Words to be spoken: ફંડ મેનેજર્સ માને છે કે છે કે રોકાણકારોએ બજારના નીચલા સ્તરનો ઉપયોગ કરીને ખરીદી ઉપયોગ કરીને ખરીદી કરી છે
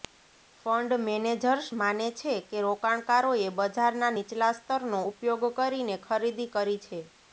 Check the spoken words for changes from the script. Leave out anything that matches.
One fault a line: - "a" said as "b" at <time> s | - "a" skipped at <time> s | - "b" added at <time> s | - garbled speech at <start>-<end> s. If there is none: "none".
- "છે કે" skipped at 2.6 s
- "ઉપયોગ કરીને ખરીદી" skipped at 6.5 s